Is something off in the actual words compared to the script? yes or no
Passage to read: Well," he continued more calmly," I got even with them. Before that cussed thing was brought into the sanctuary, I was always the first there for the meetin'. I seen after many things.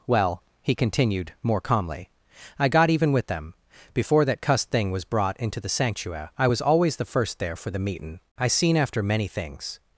no